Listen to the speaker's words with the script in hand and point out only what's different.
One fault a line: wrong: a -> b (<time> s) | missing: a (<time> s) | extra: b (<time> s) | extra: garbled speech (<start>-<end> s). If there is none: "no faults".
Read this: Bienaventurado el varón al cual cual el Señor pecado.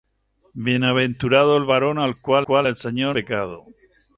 no faults